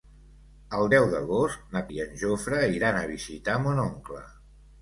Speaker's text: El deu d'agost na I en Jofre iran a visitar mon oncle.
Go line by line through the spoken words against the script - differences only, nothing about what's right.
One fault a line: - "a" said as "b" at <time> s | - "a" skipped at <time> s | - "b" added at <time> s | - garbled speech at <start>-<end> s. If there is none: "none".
none